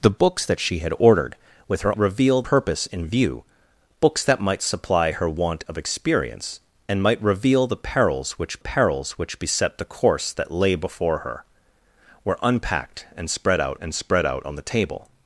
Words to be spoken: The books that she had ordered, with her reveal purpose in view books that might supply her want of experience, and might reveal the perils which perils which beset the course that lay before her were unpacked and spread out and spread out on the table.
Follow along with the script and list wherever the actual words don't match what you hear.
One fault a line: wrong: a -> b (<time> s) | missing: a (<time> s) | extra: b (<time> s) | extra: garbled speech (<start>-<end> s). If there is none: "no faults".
no faults